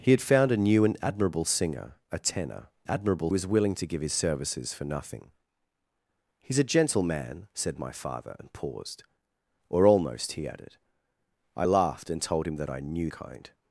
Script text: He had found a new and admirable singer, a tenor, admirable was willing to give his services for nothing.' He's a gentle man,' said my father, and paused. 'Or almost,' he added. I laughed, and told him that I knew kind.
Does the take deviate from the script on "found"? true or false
false